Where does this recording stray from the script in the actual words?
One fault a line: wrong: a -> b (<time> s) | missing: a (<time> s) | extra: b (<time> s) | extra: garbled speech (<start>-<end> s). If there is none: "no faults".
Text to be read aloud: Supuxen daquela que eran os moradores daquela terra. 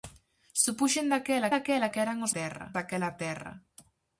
extra: daquela (1.5 s)
wrong: moradores -> terra (2.4 s)